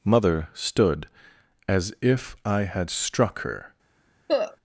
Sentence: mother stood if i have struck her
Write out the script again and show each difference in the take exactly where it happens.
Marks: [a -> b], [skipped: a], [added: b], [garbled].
mother stood [added: as] if i [have -> had] struck her